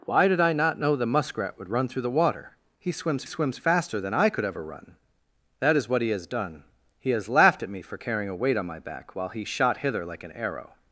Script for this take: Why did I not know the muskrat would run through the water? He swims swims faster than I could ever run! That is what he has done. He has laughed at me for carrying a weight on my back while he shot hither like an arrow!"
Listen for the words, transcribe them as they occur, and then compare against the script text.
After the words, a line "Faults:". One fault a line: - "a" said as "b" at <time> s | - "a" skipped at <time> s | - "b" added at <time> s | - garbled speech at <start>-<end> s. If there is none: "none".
Why did I not know the muskrat would run through the water? He swims swims faster than I could ever run! That is what he has done. He has laughed at me for carrying a weight on my back while he shot hither like an arrow!"
Faults:
none